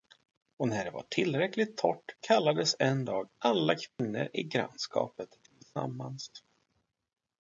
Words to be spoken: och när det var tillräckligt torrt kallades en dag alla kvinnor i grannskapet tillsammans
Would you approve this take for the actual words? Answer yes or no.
yes